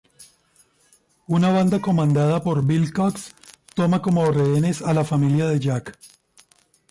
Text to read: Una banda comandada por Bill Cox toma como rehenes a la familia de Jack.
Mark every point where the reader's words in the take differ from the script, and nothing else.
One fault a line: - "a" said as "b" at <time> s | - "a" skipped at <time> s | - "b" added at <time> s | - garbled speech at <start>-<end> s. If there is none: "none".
none